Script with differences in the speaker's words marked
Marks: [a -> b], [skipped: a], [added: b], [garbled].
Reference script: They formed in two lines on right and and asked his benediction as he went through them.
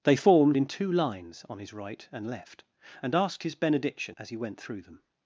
They formed in two lines on [added: his] right and [added: left] and asked his benediction as he went through them.